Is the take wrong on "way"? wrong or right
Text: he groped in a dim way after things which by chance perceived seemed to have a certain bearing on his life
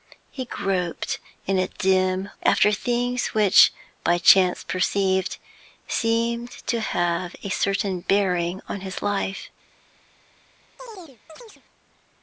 wrong